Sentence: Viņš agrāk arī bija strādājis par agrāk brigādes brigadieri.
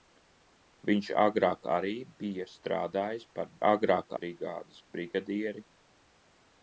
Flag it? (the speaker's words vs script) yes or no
no